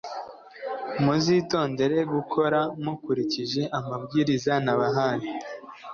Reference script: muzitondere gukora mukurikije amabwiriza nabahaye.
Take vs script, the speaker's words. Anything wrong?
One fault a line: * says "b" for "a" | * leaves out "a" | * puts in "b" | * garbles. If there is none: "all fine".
all fine